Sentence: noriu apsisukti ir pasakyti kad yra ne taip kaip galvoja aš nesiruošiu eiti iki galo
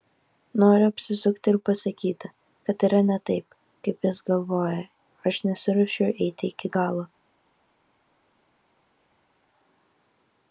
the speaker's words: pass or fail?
fail